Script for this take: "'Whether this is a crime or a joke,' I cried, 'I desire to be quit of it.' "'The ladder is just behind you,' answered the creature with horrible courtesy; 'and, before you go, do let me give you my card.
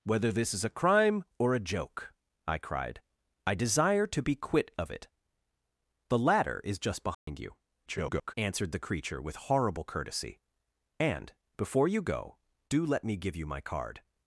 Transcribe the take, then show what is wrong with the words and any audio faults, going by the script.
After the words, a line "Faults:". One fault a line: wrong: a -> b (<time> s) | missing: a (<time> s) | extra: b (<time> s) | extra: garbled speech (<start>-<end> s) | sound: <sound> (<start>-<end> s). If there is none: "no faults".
"'Whether this is a crime or a joke,' I cried, 'I desire to be quit of it.' "'The ladder is just behind you,' [garbled] answered the creature with horrible courtesy; 'and, before you go, do let me give you my card.
Faults:
sound: dropout (7.1-7.3 s)
extra: garbled speech (7.9-8.3 s)